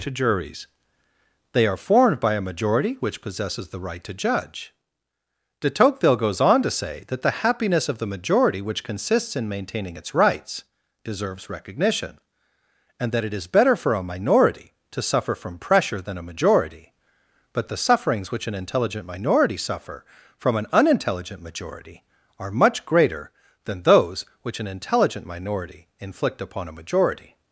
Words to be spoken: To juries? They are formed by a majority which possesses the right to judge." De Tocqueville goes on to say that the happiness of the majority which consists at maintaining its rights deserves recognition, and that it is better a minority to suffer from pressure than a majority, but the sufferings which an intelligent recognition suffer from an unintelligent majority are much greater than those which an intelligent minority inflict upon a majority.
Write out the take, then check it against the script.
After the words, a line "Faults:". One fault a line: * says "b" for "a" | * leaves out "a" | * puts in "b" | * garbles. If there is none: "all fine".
To juries? They are formed by a majority which possesses the right to judge." De Tocqueville goes on to say that the happiness of the majority which consists in maintaining its rights deserves recognition, and that it is better for a minority to suffer from pressure than a majority, but the sufferings which an intelligent minority suffer from an unintelligent majority are much greater than those which an intelligent minority inflict upon a majority.
Faults:
* says "in" for "at"
* puts in "for"
* says "minority" for "recognition"